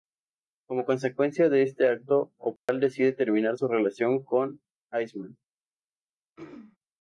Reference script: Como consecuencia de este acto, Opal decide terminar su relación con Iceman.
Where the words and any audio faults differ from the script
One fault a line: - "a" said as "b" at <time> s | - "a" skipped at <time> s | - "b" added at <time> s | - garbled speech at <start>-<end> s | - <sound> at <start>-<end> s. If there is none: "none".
- dropout at 2.6-2.7 s
- throat clearing at 6.4-6.8 s